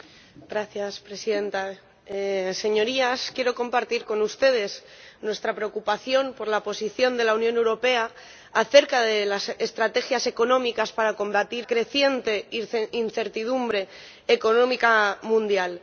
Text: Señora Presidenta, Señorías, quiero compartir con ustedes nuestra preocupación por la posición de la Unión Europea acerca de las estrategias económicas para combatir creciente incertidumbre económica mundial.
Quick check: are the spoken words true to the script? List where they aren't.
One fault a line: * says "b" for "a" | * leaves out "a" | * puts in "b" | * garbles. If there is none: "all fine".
all fine